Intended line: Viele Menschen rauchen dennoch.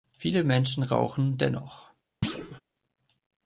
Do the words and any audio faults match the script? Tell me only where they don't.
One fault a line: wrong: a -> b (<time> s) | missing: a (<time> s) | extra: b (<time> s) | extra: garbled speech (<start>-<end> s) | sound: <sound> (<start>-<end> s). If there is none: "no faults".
sound: thud (2.2-2.6 s)